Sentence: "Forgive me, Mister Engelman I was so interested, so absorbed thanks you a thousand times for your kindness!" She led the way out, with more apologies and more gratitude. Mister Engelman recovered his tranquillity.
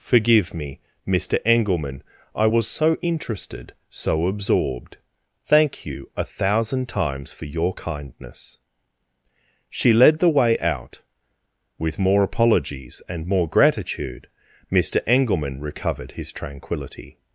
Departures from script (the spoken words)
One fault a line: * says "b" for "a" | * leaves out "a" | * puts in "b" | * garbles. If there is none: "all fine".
* says "thank" for "thanks"